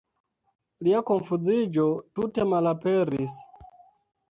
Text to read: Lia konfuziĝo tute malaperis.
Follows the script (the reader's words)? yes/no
yes